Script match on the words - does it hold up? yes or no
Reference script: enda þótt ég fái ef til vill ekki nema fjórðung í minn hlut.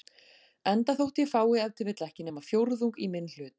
yes